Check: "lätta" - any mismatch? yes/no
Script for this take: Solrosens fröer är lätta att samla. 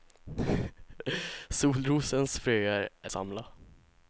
yes